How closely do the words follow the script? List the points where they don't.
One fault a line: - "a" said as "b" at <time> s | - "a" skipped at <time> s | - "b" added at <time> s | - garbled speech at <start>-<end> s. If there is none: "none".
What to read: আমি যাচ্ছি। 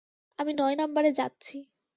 - "নয় নাম্বারে" added at 0.5 s